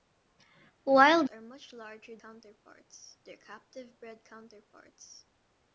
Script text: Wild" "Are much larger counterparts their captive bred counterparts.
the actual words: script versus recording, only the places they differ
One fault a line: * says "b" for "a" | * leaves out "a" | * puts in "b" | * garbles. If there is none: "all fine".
all fine